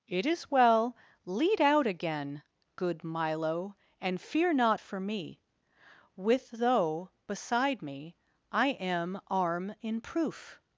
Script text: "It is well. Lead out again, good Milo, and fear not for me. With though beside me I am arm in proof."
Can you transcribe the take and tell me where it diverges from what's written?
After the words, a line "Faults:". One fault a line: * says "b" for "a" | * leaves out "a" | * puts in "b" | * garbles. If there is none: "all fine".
"It is well. Lead out again, good Milo, and fear not for me. With though beside me I am arm in proof."
Faults:
all fine